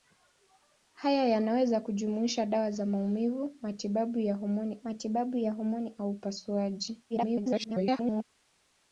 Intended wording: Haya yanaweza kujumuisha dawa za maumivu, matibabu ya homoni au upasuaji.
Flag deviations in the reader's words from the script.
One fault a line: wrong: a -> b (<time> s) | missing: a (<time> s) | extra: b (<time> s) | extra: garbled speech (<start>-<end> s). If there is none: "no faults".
extra: matibabu ya homoni (4.8 s)
extra: garbled speech (7.1-8.2 s)